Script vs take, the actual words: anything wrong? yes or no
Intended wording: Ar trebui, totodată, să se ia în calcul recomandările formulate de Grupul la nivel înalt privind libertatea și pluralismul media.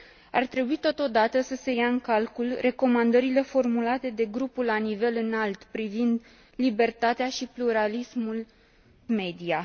no